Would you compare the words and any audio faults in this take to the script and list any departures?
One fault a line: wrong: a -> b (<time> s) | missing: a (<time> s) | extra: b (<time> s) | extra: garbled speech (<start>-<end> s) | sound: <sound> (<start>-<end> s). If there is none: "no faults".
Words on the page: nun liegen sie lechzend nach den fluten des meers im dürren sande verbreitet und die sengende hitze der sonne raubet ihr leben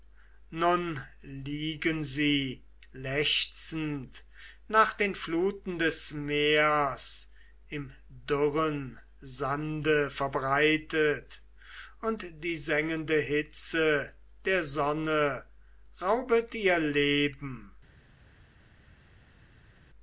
no faults